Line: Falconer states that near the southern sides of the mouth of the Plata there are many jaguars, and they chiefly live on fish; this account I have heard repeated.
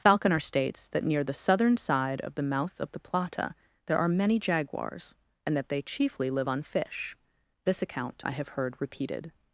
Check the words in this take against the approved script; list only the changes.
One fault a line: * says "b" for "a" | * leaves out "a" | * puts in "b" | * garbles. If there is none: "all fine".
* says "side" for "sides"
* puts in "that"